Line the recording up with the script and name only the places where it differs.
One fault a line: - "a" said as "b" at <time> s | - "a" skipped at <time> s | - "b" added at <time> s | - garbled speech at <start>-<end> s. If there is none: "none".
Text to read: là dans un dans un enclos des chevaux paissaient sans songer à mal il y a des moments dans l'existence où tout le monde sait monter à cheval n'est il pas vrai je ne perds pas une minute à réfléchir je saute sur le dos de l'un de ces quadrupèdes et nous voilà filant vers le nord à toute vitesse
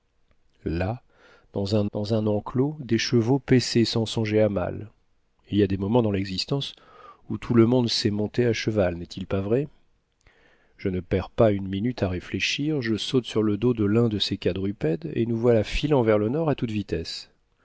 none